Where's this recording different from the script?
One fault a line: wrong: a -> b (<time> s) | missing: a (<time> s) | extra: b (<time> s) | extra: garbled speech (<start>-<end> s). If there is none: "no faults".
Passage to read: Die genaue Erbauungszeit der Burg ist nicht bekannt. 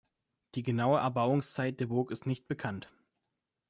no faults